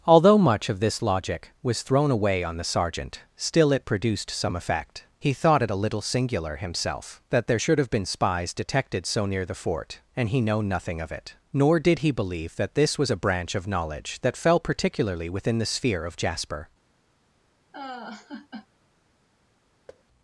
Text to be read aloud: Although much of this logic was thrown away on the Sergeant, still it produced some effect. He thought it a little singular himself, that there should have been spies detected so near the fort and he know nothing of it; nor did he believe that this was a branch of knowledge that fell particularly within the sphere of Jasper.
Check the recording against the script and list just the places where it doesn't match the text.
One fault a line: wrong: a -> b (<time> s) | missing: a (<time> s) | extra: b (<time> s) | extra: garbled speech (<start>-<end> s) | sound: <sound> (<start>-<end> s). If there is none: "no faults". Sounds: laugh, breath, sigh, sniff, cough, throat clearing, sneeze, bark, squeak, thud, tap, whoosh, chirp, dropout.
sound: laugh (17.7-18.7 s)
sound: thud (19.9-20.0 s)